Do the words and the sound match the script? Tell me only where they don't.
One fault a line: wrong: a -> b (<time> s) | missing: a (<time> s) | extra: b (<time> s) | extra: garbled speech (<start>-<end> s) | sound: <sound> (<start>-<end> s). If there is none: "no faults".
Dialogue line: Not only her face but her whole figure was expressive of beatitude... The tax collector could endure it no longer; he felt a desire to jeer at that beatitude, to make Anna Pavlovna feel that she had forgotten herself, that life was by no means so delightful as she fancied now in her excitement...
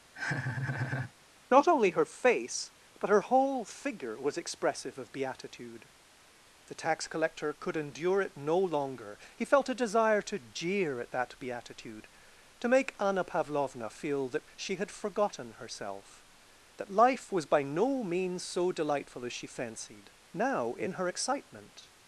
sound: laugh (0.1-1.1 s)